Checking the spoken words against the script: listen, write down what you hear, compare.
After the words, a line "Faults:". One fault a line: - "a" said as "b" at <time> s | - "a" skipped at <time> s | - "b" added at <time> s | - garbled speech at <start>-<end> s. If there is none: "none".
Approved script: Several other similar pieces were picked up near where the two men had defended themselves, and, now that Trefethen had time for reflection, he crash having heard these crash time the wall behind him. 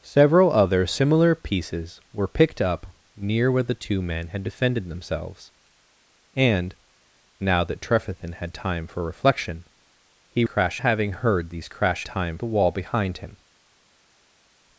Several other similar pieces were picked up near where the two men had defended themselves, and, now that Trefethen had time for reflection, he crash having heard these crash time the wall behind him.
Faults:
none